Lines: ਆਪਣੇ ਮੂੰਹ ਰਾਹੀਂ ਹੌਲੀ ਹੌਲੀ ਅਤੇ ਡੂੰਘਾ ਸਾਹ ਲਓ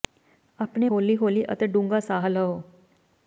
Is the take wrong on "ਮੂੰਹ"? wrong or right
wrong